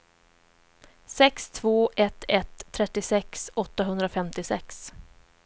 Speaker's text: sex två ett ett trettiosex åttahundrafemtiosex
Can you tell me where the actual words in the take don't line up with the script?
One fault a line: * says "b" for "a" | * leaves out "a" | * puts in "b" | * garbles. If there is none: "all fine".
all fine